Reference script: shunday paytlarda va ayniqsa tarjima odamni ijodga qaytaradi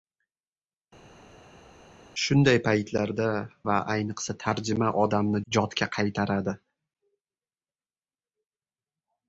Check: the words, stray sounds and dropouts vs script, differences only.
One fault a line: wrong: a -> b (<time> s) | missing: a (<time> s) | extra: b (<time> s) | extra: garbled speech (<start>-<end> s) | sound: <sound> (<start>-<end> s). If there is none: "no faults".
no faults